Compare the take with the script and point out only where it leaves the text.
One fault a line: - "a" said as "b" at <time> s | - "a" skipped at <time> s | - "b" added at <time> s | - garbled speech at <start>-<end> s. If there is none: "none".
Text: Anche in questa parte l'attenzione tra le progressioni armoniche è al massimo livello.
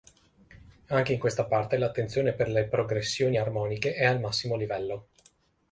- "tra" said as "per" at 2.3 s